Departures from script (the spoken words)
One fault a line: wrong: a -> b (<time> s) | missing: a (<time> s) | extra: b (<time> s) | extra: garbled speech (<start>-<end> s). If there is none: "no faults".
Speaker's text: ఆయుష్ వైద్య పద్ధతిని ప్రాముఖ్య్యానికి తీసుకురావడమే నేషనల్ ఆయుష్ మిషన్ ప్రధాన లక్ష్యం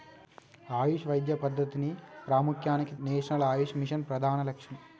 missing: తీసుకురావడమే (3.0 s)